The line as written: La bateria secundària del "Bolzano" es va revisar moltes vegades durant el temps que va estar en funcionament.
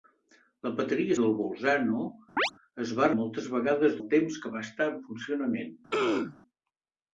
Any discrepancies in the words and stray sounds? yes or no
yes